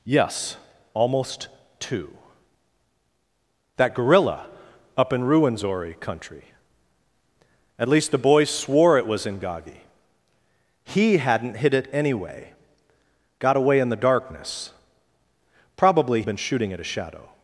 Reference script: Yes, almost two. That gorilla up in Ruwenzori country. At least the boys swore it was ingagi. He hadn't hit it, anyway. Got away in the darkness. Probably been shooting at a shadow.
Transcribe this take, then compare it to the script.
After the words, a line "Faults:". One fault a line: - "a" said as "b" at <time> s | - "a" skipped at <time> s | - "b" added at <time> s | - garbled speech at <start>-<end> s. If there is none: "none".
Yes, almost two. That gorilla up in Ruwenzori country. At least the boys swore it was ingagi. He hadn't hit it, anyway. Got away in the darkness. Probably been shooting at a shadow.
Faults:
none